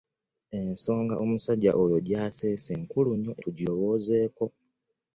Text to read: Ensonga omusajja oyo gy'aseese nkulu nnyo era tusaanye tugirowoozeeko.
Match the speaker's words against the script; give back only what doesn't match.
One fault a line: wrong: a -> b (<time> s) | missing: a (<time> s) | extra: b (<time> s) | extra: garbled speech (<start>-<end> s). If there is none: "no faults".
missing: era tusaanye (3.3 s)